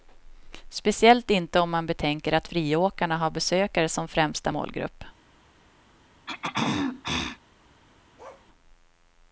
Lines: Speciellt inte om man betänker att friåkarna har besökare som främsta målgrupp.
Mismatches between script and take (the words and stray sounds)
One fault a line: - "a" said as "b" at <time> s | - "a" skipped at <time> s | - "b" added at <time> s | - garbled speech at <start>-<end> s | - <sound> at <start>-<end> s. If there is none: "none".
- throat clearing at 6.3-7.4 s
- bark at 8.2-8.5 s